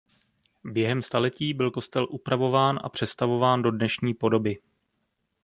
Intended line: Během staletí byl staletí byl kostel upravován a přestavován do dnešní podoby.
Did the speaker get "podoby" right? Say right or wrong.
right